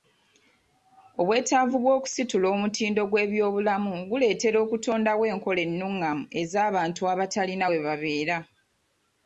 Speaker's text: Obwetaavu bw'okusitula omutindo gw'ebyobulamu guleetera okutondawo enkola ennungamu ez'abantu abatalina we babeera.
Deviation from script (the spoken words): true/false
false